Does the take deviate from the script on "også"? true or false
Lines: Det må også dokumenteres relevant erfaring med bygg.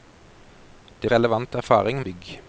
true